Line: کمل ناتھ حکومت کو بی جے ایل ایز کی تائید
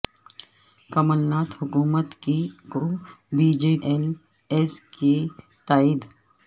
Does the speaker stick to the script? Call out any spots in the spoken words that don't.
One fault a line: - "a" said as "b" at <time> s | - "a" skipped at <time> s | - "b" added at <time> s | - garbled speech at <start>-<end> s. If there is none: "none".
none